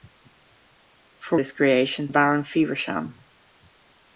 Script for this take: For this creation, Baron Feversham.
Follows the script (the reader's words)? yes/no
yes